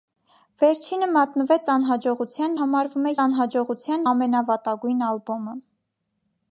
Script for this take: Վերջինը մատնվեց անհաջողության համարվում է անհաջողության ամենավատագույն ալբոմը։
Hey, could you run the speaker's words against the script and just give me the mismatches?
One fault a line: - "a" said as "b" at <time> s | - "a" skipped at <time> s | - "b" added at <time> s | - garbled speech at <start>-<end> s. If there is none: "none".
none